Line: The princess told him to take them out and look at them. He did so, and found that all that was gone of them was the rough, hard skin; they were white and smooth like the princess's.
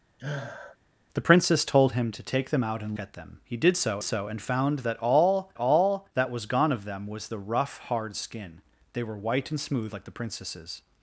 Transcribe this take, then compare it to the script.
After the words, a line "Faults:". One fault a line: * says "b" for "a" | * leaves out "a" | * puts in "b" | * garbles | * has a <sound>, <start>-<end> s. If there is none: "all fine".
The princess told him to take them out and at them. He did so so, and found that all all that was gone of them was the rough, hard skin; they were white and smooth like the princess's.
Faults:
* has a sniff, 0.2-0.8 s
* leaves out "look"
* puts in "so"
* puts in "all"